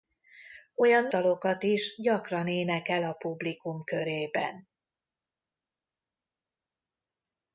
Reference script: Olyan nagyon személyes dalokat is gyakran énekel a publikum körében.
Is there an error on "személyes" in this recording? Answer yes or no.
yes